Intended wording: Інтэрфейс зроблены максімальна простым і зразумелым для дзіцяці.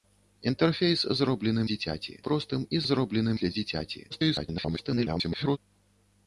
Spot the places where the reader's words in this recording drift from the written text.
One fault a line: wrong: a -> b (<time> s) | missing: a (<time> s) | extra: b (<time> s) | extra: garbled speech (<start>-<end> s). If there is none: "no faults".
wrong: максімальна -> дзіцяці (1.7 s)
wrong: зразумелым -> зроблены (2.9 s)
extra: garbled speech (4.1-5.6 s)